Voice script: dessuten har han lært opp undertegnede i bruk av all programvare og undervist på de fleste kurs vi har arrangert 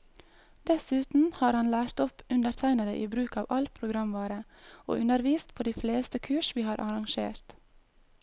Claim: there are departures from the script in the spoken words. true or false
false